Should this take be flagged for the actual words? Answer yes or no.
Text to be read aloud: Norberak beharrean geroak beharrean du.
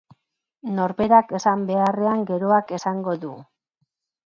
yes